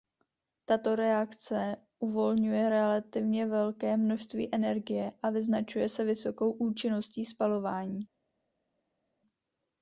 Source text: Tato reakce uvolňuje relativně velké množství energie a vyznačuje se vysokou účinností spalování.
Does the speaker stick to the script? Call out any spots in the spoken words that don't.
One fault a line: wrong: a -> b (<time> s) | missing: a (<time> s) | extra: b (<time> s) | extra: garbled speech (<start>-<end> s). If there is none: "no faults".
no faults